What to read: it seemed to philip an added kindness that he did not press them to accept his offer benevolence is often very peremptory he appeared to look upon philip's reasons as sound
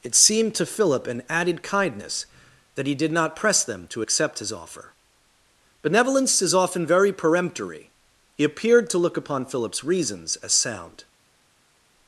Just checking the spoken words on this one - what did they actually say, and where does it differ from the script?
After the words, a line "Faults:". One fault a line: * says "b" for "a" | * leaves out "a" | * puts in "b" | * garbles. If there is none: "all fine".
it seemed to philip an added kindness that he did not press them to accept his offer benevolence is often very peremptory he appeared to look upon philip's reasons as sound
Faults:
all fine